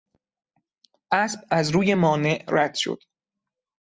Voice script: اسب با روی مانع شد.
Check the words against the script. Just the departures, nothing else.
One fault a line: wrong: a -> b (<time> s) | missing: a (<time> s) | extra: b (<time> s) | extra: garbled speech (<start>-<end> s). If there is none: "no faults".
wrong: با -> از (1.5 s)
extra: رد (2.5 s)